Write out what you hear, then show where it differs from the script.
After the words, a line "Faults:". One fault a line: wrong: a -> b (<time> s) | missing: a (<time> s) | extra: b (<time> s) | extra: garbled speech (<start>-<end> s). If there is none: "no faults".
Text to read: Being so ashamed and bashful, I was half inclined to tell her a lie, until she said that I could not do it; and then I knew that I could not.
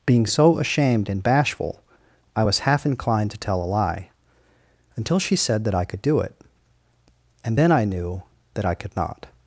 Being so ashamed and bashful, I was half inclined to tell a lie, until she said that I could do it; and then I knew that I could not.
Faults:
missing: her (3.6 s)
missing: not (6.0 s)